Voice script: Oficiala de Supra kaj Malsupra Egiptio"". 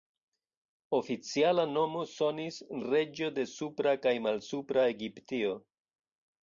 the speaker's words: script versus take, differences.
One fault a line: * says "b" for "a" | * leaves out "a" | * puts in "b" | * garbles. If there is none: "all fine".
* puts in "nomo sonis reĝo"